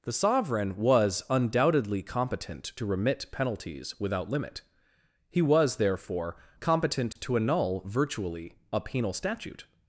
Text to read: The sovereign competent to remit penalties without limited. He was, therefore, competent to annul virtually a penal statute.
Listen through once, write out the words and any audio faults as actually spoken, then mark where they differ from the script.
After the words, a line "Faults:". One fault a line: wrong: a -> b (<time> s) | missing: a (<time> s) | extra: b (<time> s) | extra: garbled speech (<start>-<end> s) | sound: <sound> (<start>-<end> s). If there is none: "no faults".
The sovereign was undoubtedly competent to remit penalties without limit. He was, therefore, competent to annul virtually a penal statute.
Faults:
extra: was undoubtedly (0.8 s)
wrong: limited -> limit (4.3 s)
sound: dropout (7.1-7.2 s)